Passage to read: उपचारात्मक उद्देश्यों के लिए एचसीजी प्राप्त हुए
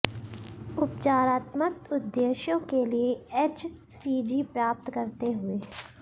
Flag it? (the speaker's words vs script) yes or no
yes